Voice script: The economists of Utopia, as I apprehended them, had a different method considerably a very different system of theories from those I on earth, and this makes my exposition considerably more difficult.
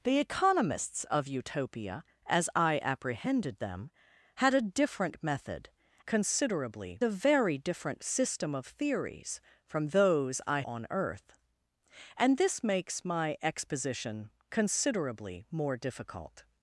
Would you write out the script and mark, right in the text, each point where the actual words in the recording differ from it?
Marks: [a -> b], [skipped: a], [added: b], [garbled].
The economists of Utopia, as I apprehended them, had a different method considerably a very different system of theories from those I on earth, and this makes my exposition considerably more difficult.